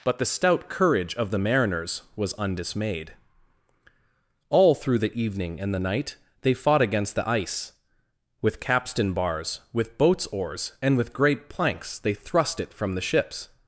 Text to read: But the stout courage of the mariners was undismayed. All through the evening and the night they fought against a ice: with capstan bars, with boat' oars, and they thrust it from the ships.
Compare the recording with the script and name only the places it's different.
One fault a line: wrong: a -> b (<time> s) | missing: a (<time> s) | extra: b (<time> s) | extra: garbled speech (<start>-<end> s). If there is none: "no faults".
wrong: a -> the (7.1 s)
wrong: boat -> boats (10.0 s)
extra: with great planks (11.0 s)